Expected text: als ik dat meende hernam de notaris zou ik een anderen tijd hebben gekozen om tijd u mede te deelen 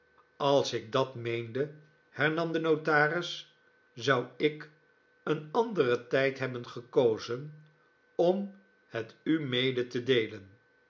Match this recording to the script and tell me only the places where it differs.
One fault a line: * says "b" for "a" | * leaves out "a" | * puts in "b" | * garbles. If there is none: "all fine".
* says "het" for "tijd"